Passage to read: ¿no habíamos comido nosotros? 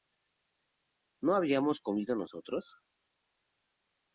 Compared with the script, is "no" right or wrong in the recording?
right